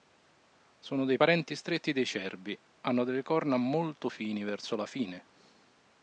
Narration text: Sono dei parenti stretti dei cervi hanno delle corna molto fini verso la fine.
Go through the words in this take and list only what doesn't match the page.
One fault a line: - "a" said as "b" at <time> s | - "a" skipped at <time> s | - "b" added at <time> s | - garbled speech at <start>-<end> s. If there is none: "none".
none